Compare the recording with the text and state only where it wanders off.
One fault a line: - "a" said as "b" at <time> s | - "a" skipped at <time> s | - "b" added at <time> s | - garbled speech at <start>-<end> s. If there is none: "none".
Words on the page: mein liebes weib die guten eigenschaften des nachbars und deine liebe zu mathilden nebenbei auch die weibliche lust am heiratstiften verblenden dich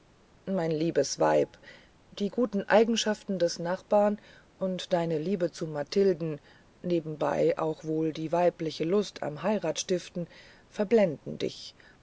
- "wohl" added at 7.8 s